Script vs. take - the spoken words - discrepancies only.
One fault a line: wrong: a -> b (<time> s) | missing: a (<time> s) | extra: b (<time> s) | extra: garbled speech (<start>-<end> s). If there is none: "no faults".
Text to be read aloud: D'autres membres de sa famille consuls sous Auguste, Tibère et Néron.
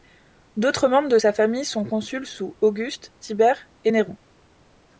extra: sont (1.6 s)